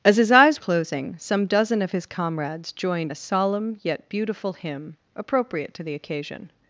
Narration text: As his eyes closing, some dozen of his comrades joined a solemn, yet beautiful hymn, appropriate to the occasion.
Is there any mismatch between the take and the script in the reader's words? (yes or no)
no